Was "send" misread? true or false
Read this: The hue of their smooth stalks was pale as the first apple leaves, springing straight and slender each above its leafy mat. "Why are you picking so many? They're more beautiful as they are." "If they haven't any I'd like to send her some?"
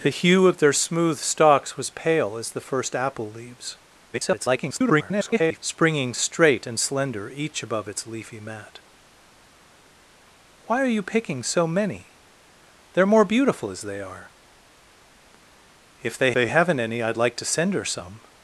false